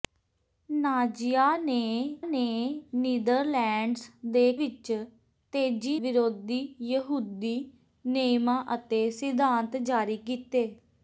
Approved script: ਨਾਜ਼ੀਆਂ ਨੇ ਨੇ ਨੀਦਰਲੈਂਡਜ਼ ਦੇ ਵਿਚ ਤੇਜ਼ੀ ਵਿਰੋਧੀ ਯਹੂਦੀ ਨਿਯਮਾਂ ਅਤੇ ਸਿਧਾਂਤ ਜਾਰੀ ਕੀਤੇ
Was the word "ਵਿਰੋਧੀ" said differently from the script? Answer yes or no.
no